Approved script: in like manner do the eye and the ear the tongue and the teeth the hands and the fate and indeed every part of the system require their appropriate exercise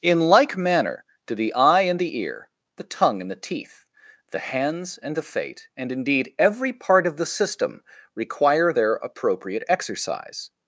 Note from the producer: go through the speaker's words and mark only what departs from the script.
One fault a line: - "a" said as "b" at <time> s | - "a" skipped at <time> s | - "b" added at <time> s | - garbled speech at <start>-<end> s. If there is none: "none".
none